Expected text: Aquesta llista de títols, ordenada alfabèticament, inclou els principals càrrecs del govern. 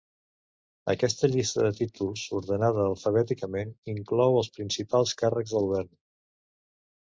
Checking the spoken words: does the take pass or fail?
fail